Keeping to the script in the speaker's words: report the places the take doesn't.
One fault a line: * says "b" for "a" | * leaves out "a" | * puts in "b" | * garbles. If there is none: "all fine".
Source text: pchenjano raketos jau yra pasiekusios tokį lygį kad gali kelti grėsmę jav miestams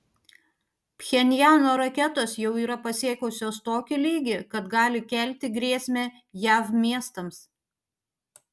all fine